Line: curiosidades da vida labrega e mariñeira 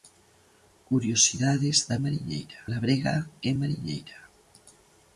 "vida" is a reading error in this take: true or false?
true